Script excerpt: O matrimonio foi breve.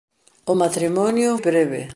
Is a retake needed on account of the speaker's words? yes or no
yes